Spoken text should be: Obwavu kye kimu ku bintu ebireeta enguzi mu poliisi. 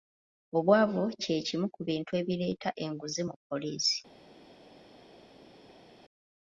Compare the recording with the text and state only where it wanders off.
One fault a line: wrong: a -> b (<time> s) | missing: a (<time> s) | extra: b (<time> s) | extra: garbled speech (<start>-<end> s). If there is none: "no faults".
no faults